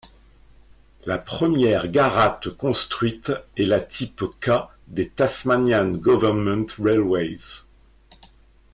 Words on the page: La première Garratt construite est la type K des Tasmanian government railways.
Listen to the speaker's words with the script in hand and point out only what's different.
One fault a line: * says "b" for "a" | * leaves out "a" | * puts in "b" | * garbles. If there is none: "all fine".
all fine